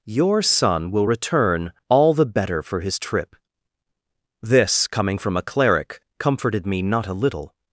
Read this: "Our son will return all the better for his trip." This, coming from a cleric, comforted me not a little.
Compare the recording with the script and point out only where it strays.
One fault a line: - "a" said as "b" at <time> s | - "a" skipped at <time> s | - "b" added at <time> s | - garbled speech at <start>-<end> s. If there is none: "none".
- "Our" said as "Your" at 0.1 s